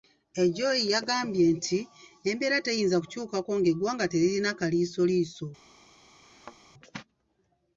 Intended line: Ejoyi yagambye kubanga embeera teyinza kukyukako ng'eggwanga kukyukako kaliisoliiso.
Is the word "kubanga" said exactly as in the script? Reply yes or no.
no